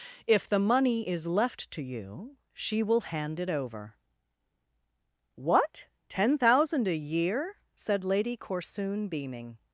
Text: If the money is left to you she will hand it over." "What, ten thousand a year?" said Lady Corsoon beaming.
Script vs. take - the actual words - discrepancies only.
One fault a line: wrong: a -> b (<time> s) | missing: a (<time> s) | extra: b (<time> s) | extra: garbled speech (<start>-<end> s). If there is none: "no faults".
no faults